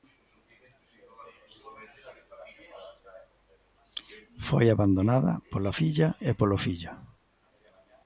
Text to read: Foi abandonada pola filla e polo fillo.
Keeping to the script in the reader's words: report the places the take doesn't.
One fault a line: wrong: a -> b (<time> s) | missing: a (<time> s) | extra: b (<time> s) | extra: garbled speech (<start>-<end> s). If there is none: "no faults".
no faults